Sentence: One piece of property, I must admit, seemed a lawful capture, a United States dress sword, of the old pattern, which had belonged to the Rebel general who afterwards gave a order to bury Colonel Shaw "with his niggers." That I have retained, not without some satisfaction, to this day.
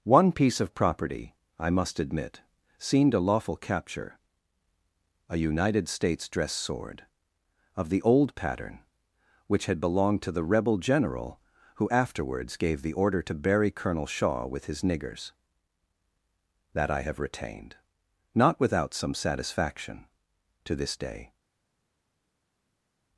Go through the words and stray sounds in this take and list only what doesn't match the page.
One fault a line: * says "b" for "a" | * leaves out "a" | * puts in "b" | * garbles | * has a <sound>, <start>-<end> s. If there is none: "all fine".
* says "the" for "a"